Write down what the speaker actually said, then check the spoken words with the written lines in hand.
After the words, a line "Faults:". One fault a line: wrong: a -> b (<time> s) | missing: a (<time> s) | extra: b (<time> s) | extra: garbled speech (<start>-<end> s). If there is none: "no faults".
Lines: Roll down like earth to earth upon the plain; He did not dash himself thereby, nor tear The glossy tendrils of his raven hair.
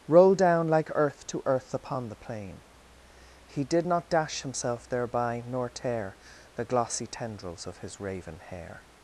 Roll down like earth to earth upon the plain; He did not dash himself thereby, nor tear The glossy tendrils of his raven hair.
Faults:
no faults